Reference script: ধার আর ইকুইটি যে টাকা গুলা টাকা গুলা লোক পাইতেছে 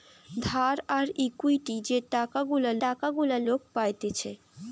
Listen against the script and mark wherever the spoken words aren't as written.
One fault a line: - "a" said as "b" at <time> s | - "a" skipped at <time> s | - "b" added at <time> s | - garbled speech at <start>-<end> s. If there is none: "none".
none